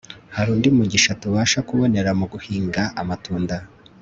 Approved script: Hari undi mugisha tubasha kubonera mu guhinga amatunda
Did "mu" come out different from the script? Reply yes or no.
no